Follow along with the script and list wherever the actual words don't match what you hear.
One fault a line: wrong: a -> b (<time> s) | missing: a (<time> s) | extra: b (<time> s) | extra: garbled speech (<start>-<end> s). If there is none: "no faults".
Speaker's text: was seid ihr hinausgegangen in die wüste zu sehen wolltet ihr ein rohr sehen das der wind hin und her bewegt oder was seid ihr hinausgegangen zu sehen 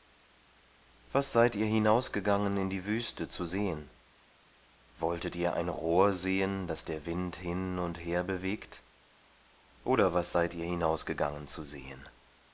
no faults